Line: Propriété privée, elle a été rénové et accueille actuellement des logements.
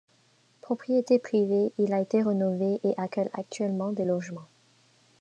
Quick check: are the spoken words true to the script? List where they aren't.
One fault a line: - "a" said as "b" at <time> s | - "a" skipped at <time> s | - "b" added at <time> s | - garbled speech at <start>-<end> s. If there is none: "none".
- "elle" said as "il" at 1.8 s